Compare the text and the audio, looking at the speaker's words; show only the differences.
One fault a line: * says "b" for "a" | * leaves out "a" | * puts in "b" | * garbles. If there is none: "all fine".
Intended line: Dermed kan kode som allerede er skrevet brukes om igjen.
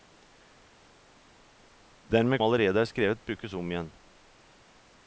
* leaves out "kan kode som"